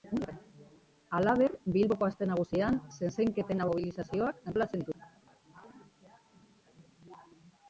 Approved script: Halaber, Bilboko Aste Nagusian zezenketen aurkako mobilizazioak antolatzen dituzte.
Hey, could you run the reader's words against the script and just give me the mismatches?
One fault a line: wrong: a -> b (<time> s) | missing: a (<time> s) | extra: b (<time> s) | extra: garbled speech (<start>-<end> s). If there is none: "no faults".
missing: aurkako (3.6 s)